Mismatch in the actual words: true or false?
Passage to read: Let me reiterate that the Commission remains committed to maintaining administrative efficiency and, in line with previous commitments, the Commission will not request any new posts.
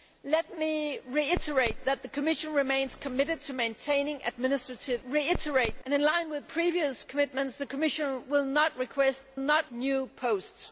true